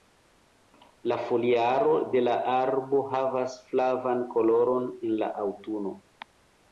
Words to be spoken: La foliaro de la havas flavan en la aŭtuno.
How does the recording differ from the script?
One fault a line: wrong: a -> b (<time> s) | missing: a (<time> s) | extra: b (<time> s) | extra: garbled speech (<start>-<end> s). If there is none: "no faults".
extra: arbo (2.5 s)
extra: koloron (4.4 s)